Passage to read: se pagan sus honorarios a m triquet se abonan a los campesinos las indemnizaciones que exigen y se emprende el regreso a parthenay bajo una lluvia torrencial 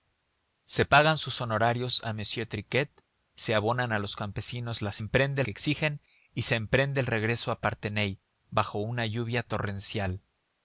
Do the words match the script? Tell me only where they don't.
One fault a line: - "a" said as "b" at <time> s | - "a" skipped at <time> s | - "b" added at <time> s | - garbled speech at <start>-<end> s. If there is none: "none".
- "indemnizaciones" said as "emprende" at 5.0 s